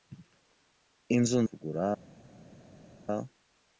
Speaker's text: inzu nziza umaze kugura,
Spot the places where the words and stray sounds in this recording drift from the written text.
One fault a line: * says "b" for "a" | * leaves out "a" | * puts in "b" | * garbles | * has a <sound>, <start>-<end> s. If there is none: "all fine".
* leaves out "nziza umaze"